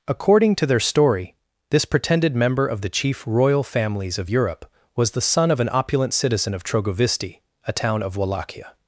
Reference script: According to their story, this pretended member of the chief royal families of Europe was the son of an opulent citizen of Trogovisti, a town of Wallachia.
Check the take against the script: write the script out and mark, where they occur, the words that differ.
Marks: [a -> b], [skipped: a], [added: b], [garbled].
According to their story, this pretended member of the chief royal families of Europe was the son of an opulent citizen of Trogovisti, a town of Wallachia.